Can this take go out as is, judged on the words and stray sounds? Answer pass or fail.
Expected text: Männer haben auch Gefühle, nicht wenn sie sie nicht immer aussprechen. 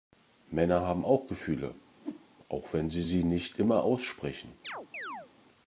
fail